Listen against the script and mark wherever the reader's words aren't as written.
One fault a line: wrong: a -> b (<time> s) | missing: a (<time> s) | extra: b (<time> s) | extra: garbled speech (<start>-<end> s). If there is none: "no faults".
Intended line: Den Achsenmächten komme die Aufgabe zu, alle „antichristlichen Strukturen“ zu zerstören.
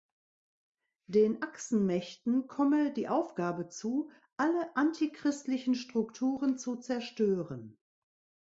no faults